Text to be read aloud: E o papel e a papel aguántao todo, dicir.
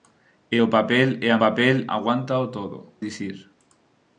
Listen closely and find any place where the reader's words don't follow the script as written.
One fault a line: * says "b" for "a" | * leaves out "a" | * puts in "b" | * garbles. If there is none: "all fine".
all fine